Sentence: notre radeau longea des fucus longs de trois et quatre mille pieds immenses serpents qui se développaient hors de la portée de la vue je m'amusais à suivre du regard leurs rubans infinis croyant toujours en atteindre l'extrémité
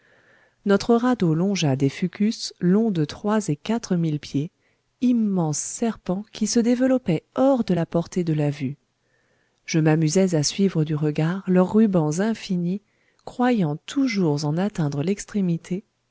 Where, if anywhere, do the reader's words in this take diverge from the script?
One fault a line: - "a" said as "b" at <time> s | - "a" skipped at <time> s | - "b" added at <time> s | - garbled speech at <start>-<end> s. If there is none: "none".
none